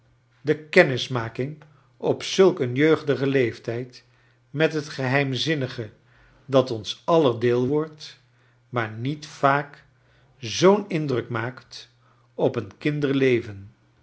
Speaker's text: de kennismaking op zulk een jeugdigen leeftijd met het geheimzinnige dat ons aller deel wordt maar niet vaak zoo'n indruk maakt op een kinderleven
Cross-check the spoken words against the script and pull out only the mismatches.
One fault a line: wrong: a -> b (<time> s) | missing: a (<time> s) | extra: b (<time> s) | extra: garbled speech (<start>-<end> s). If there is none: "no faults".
no faults